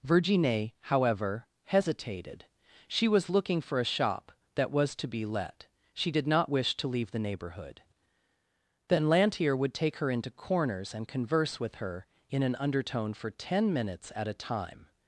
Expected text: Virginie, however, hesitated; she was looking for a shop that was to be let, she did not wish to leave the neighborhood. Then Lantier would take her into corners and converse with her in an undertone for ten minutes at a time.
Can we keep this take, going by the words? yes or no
yes